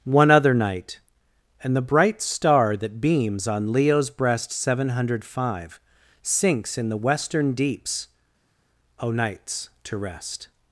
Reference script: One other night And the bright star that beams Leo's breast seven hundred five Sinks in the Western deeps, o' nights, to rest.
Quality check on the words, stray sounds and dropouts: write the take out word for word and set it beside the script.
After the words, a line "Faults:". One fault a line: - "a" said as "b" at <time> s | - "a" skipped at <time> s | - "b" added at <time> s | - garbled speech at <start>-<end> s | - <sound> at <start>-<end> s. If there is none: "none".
One other night And the bright star that beams on Leo's breast seven hundred five Sinks in the Western deeps, o' nights, to rest.
Faults:
- "on" added at 3.5 s